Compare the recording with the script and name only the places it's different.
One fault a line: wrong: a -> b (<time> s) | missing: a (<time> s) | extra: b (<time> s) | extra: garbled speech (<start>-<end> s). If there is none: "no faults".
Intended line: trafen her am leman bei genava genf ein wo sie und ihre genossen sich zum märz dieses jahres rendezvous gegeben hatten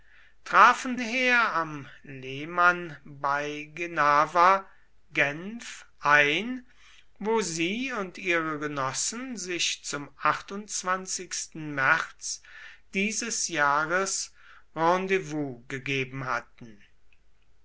no faults